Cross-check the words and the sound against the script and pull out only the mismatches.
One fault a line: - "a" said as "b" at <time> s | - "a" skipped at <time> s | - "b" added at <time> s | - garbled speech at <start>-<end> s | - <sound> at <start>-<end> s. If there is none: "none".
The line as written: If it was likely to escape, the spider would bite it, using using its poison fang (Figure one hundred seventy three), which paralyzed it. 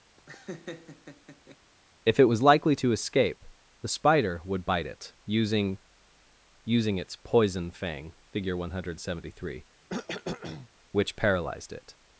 - laugh at 0.2-1.6 s
- cough at 9.9-10.7 s